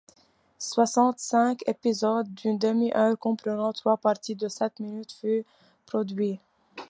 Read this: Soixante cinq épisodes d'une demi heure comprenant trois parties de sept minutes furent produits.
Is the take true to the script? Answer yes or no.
yes